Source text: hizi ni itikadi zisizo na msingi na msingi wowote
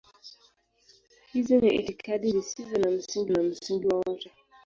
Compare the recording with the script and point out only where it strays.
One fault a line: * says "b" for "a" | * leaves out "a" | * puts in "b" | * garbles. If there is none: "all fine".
all fine